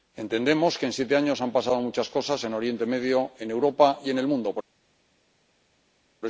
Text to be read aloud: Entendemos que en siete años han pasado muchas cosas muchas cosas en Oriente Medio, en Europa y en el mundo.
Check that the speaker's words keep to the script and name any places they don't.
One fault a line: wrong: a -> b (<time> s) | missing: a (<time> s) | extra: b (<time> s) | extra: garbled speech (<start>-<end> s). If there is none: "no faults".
missing: muchas cosas (2.4 s)